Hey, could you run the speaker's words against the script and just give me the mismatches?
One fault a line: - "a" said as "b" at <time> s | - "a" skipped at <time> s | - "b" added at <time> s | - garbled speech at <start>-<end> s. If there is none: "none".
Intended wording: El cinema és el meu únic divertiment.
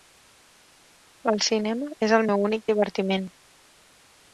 none